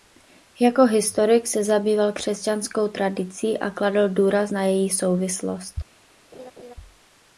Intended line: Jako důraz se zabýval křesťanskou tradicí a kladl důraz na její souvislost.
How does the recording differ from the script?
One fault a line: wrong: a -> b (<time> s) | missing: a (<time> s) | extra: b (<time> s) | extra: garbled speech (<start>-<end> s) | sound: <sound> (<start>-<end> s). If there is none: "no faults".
wrong: důraz -> historik (0.8 s)
sound: laugh (6.3-6.7 s)